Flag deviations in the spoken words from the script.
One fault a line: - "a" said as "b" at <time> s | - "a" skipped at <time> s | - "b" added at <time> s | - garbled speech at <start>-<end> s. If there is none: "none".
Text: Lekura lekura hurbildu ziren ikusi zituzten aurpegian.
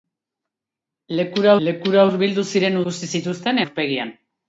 none